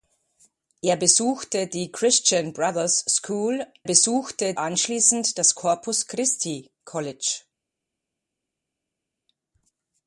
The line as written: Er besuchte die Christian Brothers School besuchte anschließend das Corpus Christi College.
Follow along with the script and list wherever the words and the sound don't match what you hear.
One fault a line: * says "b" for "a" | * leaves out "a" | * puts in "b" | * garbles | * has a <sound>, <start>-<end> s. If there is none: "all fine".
all fine